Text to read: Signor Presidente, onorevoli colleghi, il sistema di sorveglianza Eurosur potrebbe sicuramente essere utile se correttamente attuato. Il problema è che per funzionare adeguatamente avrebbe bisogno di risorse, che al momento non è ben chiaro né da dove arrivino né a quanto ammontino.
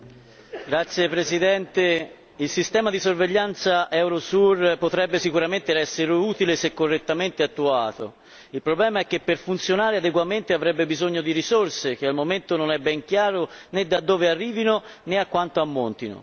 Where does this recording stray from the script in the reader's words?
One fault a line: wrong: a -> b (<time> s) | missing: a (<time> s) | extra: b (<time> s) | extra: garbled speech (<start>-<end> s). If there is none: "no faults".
no faults